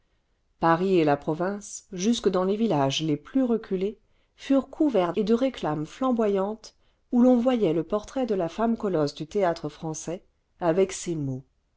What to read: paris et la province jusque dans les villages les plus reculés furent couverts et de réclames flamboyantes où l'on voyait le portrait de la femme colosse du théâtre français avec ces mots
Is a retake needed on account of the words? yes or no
no